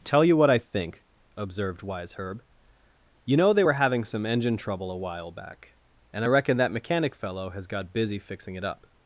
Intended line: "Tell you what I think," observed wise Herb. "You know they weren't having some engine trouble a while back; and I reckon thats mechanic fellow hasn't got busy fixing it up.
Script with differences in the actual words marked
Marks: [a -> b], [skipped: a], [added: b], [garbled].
"Tell you what I think," observed wise Herb. "You know they [weren't -> were] having some engine trouble a while back; and I reckon [thats -> that] mechanic fellow [hasn't -> has] got busy fixing it up.